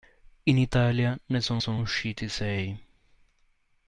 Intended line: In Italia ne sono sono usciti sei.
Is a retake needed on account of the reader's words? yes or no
no